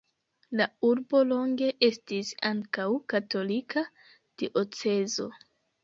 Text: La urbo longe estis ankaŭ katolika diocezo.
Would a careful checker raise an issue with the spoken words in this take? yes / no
no